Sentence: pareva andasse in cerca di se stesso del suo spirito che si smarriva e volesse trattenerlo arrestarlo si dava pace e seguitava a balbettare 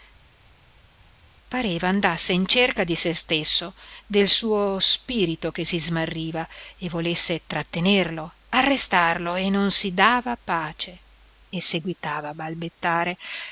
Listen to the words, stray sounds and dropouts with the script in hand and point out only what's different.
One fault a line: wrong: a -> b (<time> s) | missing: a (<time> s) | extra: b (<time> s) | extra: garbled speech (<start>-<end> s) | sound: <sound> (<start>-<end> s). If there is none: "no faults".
extra: e non (9.4 s)